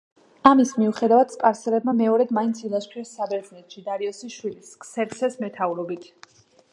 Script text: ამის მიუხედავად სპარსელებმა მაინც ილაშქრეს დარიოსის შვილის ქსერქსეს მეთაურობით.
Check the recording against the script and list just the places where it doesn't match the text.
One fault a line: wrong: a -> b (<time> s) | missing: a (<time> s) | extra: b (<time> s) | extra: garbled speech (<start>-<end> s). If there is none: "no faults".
extra: მეორედ (1.9 s)
extra: საბერძნეთში (3.2 s)